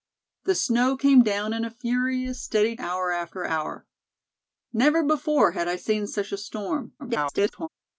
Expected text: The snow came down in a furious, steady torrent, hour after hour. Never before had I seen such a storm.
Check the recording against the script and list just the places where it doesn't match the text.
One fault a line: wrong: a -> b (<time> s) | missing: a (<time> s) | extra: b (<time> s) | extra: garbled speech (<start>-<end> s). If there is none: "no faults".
missing: torrent (2.8 s)
extra: garbled speech (7.0-7.7 s)